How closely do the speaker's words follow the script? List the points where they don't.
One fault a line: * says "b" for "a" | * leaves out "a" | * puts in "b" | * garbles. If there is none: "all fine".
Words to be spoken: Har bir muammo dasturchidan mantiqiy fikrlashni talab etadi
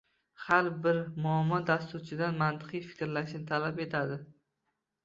all fine